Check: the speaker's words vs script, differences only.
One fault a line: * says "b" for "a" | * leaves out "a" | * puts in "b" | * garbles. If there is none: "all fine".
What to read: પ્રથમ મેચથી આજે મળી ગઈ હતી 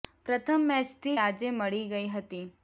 all fine